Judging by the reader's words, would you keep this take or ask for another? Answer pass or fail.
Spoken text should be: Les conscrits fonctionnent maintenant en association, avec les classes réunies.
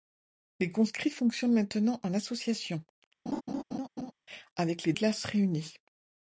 pass